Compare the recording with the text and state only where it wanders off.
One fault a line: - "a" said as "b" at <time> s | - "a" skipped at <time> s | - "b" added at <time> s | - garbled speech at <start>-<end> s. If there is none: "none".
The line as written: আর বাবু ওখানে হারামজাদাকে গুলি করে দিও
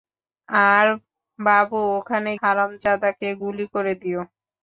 none